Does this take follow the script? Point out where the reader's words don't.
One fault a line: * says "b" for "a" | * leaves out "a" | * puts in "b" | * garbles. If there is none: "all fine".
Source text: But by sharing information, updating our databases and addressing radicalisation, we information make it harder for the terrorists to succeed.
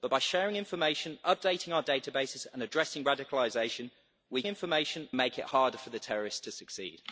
all fine